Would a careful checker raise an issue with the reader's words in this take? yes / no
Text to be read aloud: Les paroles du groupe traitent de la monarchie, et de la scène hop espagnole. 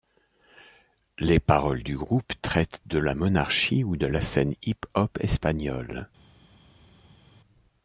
yes